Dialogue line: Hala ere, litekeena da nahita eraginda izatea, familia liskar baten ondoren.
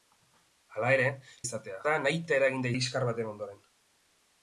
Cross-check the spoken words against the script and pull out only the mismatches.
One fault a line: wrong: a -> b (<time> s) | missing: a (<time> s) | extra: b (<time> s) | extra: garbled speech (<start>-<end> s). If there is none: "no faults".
wrong: litekeena -> izatea (1.5 s)
missing: izatea familia (2.7 s)